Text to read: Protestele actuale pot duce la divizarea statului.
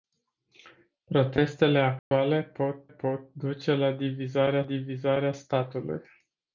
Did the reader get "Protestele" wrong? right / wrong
right